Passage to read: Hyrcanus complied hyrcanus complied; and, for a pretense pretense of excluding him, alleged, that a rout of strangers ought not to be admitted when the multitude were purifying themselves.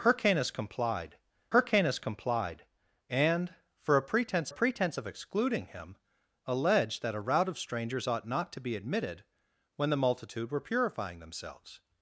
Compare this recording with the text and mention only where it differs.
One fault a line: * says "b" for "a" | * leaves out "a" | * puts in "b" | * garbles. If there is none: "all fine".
all fine